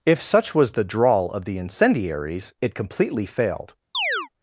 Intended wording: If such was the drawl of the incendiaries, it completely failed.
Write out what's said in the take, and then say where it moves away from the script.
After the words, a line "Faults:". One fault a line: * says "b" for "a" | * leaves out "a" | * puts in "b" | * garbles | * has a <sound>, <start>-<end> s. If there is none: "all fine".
If such was the drawl of the incendiaries, it completely failed.
Faults:
* has a chirp, 3.9-4.3 s